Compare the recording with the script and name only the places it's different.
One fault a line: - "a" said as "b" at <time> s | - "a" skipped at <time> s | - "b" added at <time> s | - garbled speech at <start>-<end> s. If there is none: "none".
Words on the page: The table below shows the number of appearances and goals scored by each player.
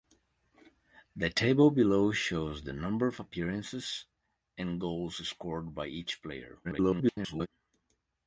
- garbled speech at 6.6-7.5 s